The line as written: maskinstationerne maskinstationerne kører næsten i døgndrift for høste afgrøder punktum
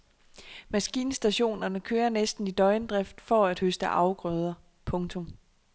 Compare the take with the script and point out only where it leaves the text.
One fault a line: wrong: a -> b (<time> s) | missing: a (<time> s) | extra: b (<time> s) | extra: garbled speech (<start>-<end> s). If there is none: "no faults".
missing: maskinstationerne (1.8 s)
extra: at (3.5 s)